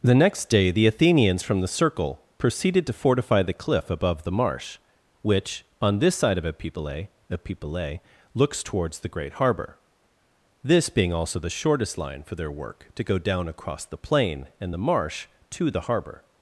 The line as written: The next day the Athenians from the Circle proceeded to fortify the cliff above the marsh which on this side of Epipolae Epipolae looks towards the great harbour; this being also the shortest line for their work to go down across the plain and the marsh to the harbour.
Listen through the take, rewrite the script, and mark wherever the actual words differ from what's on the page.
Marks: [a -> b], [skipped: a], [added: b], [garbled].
The next day the Athenians from the Circle proceeded to fortify the cliff above the marsh which on this side of Epipolae Epipolae looks towards the great harbour; this being also the shortest line for their work to go down across the plain and the marsh to the harbour.